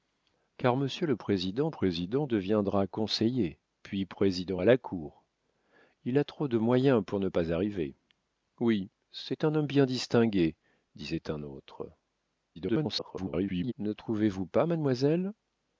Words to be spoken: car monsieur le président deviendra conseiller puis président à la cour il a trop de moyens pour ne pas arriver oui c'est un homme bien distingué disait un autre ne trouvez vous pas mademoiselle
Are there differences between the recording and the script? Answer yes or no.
yes